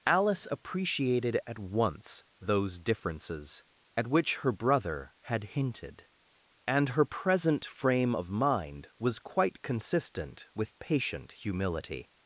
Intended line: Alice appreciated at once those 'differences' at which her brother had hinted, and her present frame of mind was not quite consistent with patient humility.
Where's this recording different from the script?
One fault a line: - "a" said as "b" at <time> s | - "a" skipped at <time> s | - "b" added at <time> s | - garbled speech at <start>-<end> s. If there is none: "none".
- "not" skipped at 9.2 s